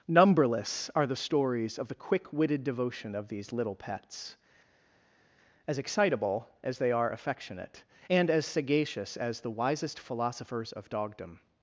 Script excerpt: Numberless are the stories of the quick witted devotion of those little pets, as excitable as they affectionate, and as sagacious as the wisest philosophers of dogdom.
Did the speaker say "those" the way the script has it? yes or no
no